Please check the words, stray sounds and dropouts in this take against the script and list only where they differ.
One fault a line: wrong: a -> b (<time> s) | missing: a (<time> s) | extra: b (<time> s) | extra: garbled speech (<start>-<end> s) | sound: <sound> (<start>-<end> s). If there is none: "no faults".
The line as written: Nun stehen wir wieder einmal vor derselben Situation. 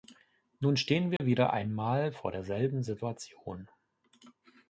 sound: dropout (1.2-1.2 s)